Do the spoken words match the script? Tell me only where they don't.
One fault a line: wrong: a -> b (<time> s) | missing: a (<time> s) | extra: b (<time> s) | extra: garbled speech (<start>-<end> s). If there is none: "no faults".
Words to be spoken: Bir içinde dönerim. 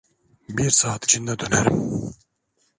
extra: saat (0.7 s)